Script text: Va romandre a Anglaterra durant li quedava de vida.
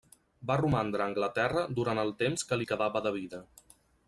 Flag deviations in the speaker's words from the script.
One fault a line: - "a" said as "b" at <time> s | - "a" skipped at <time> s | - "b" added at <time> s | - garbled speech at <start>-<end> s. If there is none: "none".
- "el temps que" added at 2.0 s